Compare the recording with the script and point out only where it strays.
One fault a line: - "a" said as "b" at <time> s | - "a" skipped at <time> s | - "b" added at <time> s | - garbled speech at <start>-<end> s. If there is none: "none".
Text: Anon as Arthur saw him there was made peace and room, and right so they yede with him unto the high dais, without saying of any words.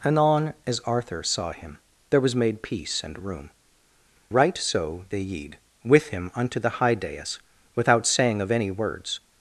- "and" skipped at 3.5 s